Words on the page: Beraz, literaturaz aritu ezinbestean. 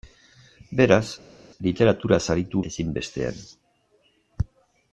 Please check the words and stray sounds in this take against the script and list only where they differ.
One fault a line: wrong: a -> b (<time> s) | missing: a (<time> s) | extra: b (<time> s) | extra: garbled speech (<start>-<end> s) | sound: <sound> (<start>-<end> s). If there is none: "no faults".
no faults